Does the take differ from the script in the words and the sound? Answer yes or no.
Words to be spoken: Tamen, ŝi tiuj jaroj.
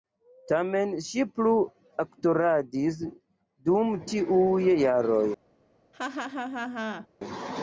yes